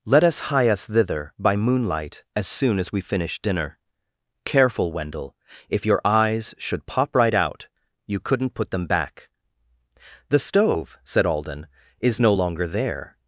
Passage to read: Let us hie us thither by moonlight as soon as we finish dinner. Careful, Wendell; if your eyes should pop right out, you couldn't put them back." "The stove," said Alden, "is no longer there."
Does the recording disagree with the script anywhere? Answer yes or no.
no